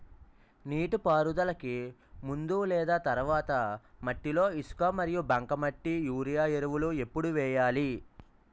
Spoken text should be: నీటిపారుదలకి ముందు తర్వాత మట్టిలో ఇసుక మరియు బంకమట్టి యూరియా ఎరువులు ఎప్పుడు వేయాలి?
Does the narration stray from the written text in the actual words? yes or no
yes